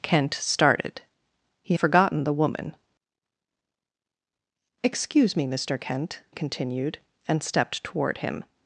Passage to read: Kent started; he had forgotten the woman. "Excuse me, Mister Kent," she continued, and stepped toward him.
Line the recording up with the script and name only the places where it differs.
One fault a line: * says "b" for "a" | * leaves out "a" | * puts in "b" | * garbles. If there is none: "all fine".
* leaves out "had"
* leaves out "she"